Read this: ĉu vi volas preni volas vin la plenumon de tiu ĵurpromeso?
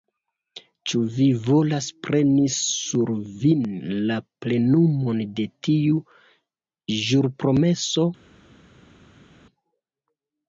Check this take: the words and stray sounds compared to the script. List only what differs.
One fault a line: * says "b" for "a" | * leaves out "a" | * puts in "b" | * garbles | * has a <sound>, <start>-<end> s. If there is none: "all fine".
* says "sur" for "volas"